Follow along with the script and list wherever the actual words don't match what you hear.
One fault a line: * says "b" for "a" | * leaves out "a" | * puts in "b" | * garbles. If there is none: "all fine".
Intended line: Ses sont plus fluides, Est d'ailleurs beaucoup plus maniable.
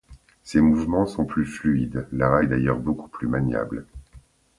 * puts in "mouvements"
* puts in "Lara"